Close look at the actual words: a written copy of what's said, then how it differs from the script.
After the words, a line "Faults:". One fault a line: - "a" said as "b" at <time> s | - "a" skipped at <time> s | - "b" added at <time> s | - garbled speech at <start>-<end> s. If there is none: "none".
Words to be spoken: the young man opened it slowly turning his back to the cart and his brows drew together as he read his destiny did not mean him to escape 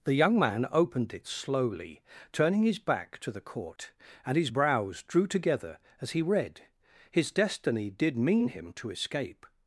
the young man opened it slowly turning his back to the court and his brows drew together as he read his destiny did mean him to escape
Faults:
- "cart" said as "court" at 3.4 s
- "not" skipped at 8.2 s